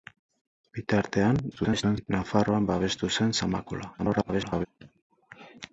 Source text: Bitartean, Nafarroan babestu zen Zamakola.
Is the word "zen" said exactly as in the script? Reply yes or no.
yes